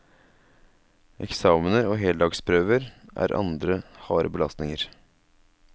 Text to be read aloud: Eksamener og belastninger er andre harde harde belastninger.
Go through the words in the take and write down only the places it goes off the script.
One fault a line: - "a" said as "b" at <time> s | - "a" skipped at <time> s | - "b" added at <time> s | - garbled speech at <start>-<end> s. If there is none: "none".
- "belastninger" said as "heldagsprøver" at 2.0 s
- "harde" skipped at 4.3 s